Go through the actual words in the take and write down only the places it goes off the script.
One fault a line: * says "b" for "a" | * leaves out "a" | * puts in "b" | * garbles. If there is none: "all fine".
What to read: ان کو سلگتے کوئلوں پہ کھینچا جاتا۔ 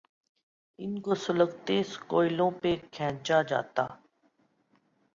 all fine